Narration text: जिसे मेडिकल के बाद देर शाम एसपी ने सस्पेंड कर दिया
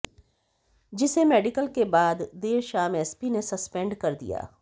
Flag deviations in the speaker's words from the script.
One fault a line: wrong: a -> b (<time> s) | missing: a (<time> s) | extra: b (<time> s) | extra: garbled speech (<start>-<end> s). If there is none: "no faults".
no faults